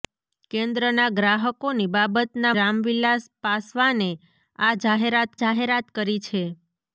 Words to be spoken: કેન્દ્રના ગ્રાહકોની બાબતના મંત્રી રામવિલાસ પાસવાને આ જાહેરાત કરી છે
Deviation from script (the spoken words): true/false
true